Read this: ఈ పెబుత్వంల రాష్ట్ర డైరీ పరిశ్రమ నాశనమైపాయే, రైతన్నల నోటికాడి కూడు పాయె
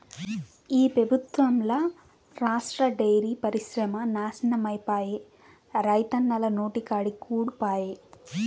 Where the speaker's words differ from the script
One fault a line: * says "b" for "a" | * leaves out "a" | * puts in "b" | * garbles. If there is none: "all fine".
all fine